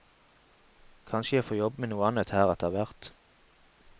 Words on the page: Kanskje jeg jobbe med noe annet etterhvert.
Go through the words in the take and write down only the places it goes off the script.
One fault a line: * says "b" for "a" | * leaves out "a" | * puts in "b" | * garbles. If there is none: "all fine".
* puts in "får"
* puts in "her"